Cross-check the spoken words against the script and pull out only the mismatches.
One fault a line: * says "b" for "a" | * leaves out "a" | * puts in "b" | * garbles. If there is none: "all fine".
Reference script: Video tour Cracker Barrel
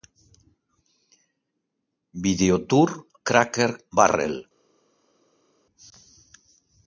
all fine